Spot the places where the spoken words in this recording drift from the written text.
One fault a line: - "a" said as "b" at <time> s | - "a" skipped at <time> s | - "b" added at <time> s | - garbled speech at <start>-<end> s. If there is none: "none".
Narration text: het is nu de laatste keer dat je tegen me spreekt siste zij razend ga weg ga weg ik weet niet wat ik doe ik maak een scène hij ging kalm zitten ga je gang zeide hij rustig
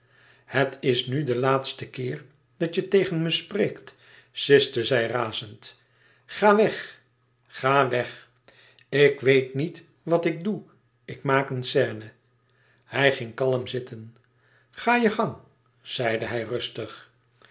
none